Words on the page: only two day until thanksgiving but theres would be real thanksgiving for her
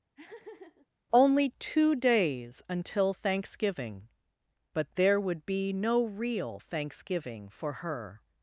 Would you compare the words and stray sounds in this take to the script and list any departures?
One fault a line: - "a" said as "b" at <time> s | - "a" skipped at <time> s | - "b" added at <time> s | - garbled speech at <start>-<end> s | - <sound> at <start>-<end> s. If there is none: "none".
- laugh at 0.1-0.9 s
- "day" said as "days" at 2.0 s
- "theres" said as "there" at 4.9 s
- "no" added at 5.7 s